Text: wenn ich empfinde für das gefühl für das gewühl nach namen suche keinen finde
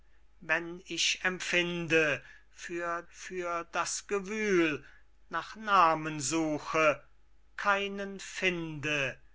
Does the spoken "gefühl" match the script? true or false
false